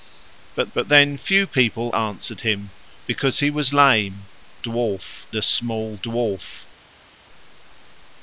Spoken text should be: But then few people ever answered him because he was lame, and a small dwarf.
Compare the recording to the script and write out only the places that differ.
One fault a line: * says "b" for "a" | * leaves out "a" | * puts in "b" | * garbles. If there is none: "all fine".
* puts in "but"
* leaves out "ever"
* says "dwarf" for "and"